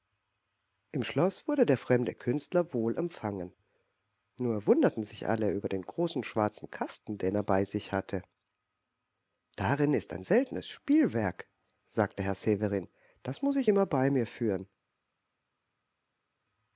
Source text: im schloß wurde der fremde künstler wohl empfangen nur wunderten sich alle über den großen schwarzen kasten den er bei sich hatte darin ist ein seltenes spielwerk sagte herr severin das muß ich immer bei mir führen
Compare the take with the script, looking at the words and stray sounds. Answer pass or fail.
pass